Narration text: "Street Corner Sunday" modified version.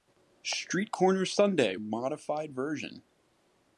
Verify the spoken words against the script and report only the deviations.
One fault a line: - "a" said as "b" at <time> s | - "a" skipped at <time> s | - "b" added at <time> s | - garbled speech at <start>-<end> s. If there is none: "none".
none